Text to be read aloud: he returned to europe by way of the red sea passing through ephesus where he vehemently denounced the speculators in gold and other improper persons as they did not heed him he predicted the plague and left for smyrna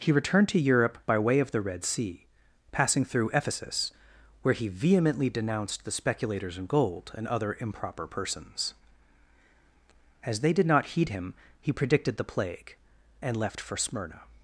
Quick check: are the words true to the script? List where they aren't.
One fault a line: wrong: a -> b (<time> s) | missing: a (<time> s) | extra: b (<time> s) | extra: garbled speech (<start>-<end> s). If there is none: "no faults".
no faults